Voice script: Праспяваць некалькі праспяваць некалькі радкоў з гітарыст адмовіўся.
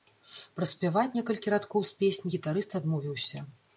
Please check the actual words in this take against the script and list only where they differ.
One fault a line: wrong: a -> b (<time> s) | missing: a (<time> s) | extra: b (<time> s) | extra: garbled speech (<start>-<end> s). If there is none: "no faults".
missing: праспяваць некалькі (1.5 s)
extra: песні (2.1 s)